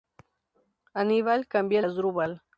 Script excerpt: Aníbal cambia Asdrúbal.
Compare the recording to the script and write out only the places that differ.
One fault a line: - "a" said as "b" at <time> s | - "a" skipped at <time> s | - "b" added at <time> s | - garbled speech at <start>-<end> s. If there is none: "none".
none